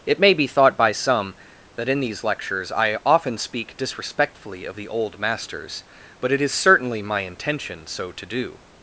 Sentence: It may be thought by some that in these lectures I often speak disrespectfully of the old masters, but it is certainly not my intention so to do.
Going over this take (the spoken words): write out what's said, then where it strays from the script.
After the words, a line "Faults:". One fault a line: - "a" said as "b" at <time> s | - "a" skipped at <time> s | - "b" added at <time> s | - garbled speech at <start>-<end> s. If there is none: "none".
It may be thought by some that in these lectures I often speak disrespectfully of the old masters, but it is certainly my intention so to do.
Faults:
- "not" skipped at 7.0 s